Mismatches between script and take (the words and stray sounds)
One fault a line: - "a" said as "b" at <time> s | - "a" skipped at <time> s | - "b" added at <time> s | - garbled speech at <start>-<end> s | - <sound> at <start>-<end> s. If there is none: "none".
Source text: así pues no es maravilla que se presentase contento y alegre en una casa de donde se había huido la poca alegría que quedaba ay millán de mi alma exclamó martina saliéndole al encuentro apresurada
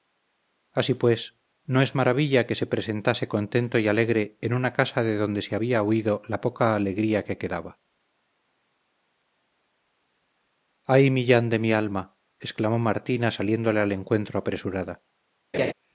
- laugh at 15.5-15.7 s